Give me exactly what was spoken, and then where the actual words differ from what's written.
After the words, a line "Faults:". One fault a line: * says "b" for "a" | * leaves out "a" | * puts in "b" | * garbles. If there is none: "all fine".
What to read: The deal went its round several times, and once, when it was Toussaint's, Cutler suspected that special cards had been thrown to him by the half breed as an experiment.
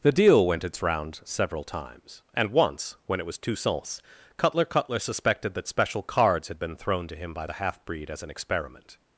The deal went its round several times, and once, when it was Toussaint's, Cutler Cutler suspected that special cards had been thrown to him by the half breed as an experiment.
Faults:
* puts in "Cutler"